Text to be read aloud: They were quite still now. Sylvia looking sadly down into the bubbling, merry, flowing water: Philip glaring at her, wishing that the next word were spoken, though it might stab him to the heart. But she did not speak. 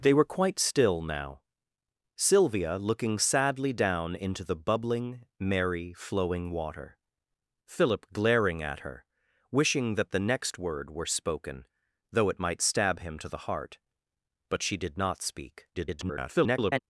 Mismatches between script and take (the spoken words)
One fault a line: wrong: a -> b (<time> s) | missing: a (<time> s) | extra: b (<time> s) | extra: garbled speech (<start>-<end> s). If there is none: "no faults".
extra: garbled speech (15.7-16.8 s)